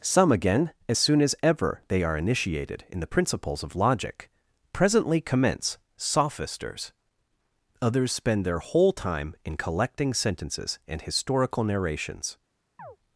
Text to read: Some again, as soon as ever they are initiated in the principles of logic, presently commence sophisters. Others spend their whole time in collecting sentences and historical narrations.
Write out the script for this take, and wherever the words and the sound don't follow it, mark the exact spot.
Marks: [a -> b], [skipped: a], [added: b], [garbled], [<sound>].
Some again, as soon as ever they are initiated in the principles of logic, presently commence sophisters. Others spend their whole time in collecting sentences and historical narrations. [chirp]